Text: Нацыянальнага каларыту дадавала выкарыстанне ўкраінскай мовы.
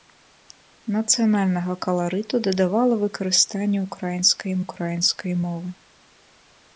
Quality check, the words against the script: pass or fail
fail